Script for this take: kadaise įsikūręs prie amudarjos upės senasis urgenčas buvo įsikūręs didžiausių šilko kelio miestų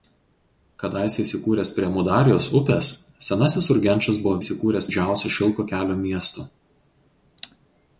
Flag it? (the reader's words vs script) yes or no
no